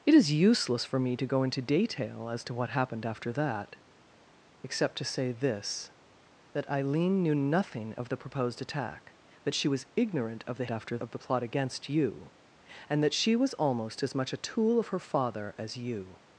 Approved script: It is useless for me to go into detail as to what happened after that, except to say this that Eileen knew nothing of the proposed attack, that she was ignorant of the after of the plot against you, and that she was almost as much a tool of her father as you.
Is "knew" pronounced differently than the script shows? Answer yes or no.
no